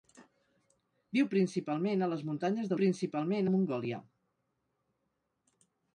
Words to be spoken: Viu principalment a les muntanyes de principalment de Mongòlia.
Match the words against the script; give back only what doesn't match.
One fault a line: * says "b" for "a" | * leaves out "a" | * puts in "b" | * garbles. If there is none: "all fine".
all fine